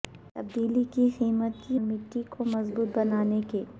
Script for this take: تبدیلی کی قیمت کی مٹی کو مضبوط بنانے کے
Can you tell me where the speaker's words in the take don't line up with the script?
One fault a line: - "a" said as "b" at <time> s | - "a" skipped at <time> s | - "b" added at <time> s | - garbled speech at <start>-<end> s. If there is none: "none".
none